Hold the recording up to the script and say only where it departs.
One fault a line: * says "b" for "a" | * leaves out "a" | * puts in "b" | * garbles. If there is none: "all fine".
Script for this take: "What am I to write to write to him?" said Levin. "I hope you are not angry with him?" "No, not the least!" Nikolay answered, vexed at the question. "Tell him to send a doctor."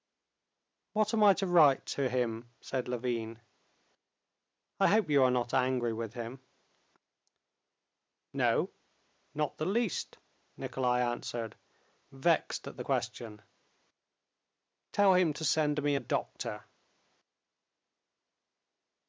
* leaves out "write to"
* puts in "me"